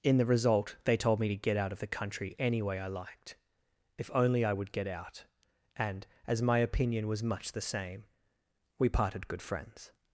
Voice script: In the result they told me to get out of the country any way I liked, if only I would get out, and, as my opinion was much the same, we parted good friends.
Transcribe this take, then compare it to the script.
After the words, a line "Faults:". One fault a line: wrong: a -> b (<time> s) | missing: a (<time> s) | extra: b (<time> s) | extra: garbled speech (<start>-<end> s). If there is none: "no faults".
In the result they told me to get out of the country any way I liked, if only I would get out, and, as my opinion was much the same, we parted good friends.
Faults:
no faults